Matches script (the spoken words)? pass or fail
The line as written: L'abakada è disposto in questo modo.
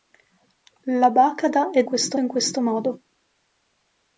fail